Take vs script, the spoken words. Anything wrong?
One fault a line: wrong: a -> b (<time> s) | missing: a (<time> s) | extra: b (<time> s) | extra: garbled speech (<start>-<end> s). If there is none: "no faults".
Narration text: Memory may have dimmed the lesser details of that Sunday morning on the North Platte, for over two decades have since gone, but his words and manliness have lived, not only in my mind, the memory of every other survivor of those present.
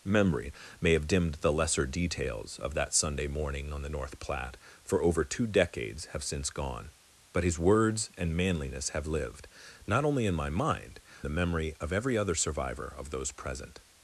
no faults